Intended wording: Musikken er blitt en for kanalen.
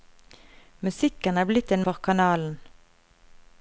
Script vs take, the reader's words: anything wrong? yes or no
no